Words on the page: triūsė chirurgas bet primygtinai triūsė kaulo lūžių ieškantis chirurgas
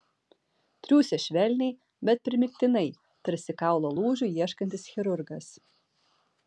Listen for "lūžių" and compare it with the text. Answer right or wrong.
right